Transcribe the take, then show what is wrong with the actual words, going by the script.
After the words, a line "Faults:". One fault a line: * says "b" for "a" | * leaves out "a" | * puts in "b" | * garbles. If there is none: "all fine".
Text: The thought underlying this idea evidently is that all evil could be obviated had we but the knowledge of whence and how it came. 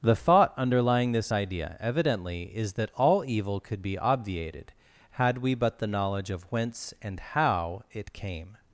The thought underlying this idea evidently is that all evil could be obviated had we but the knowledge of whence and how it came.
Faults:
all fine